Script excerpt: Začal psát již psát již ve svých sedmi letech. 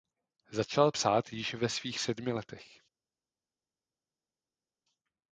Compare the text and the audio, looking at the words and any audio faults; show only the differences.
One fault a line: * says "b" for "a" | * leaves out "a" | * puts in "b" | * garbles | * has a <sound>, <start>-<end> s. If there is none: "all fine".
* leaves out "psát již"